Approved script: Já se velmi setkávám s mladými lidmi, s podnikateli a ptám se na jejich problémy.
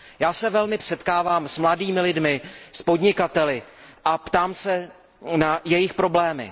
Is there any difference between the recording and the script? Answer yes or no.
no